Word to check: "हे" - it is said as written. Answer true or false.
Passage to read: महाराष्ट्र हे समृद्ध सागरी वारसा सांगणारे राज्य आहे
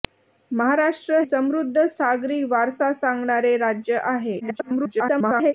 false